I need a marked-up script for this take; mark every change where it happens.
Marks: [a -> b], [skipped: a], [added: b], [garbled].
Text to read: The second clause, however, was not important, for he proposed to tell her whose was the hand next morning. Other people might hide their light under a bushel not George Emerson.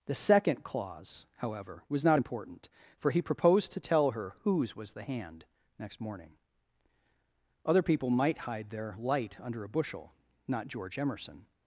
The second clause, however, was not important, for he proposed to tell her whose was the hand next morning. Other people might hide their light under a bushel not George Emerson.